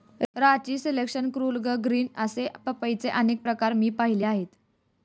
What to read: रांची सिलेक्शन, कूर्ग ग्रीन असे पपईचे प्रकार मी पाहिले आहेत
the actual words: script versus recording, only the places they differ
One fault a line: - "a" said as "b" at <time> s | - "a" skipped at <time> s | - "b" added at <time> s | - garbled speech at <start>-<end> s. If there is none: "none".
- "अनेक" added at 3.1 s